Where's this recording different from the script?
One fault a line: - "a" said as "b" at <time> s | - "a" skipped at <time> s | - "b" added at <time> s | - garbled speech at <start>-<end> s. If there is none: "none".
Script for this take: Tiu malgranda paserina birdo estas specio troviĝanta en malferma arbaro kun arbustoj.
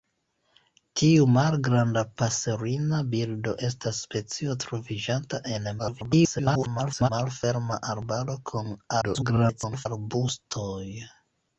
- garbled speech at 5.8-7.1 s
- garbled speech at 9.0-9.9 s